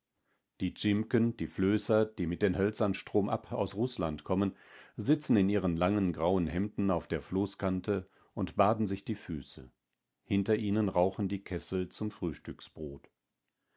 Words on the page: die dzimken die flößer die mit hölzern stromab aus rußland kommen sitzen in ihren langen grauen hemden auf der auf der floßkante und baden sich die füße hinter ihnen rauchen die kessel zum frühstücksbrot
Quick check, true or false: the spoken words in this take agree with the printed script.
false